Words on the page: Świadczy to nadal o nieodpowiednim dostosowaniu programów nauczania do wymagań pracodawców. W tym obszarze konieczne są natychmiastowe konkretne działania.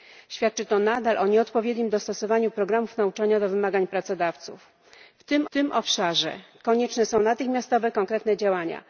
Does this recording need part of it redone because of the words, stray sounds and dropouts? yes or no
yes